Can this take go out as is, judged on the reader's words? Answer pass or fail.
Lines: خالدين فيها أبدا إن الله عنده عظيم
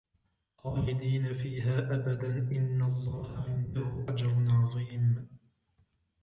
fail